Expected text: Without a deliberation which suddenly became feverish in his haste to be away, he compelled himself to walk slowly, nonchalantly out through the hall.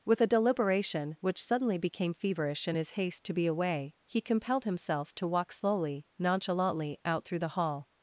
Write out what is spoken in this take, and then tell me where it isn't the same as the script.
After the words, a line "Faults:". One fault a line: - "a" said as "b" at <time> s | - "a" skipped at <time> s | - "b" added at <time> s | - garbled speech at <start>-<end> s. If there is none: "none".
With a deliberation which suddenly became feverish in his haste to be away, he compelled himself to walk slowly, nonchalantly out through the hall.
Faults:
- "Without" said as "With" at 0.0 s